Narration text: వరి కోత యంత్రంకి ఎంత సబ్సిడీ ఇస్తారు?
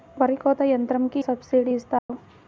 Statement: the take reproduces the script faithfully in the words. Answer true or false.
false